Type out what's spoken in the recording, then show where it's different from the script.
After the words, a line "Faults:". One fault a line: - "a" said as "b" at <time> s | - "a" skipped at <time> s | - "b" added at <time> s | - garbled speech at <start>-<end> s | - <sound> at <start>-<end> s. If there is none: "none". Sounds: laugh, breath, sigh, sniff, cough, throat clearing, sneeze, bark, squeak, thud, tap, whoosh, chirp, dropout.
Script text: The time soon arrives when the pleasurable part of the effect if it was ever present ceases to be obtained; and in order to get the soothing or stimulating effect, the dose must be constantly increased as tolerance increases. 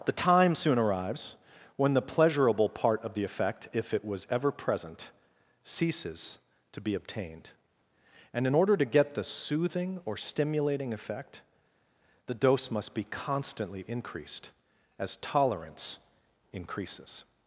The time soon arrives when the pleasurable part of the effect if it was ever present ceases to be obtained; and in order to get the soothing or stimulating effect, the dose must be constantly increased as tolerance increases.
Faults:
none